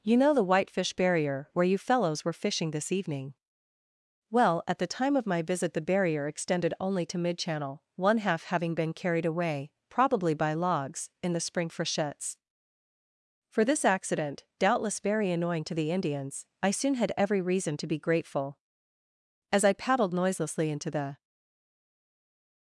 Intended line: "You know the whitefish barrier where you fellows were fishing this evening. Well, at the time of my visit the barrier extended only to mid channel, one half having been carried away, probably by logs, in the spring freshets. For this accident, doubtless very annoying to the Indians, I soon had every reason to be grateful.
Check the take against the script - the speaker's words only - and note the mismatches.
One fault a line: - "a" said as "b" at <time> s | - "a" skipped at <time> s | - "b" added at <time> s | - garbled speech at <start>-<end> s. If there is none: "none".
- "As I paddled noiselessly into the" added at 19.5 s